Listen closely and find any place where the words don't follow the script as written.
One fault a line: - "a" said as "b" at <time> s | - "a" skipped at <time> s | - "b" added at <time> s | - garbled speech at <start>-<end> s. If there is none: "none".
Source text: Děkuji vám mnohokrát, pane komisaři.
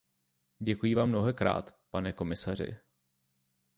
none